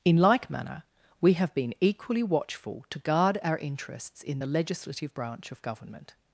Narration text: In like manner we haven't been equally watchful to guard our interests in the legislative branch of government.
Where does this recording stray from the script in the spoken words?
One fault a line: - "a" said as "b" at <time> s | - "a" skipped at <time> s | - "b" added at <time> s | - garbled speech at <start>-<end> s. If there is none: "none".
- "haven't" said as "have" at 1.3 s